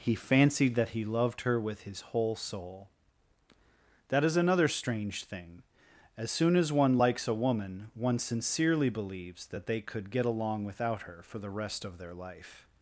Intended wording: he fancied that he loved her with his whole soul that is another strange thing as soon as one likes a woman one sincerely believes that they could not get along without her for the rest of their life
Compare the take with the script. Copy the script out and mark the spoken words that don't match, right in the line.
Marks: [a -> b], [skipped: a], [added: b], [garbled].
he fancied that he loved her with his whole soul that is another strange thing as soon as one likes a woman one sincerely believes that they could [skipped: not] get along without her for the rest of their life